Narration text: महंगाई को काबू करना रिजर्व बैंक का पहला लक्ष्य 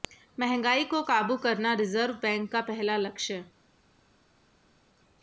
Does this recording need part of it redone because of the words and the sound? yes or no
no